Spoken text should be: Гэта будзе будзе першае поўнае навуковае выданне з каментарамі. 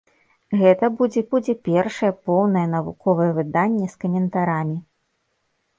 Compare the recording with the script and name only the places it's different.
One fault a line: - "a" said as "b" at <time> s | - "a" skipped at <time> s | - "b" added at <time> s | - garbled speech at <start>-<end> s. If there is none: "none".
none